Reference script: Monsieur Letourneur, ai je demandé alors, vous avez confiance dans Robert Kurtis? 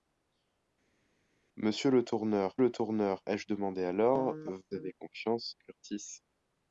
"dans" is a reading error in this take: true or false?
true